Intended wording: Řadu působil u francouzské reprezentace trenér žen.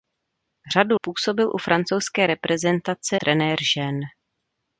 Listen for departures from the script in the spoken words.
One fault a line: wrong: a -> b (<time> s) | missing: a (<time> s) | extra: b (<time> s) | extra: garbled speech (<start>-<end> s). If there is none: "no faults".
no faults